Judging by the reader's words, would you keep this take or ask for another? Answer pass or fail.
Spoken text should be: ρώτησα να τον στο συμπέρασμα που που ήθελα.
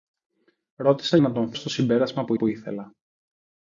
pass